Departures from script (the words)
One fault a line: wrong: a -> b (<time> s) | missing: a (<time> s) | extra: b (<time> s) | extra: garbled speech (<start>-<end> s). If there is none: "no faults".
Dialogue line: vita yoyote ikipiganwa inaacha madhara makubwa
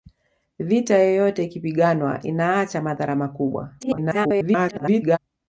extra: garbled speech (3.8-5.2 s)